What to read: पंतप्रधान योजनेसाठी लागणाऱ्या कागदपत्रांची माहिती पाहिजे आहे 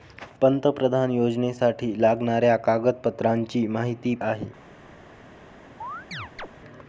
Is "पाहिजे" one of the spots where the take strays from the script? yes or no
yes